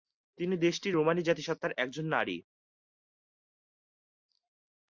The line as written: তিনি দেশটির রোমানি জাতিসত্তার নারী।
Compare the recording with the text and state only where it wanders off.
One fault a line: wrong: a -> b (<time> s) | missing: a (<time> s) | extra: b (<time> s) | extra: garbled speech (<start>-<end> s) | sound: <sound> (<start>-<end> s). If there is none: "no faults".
extra: একজন (1.8 s)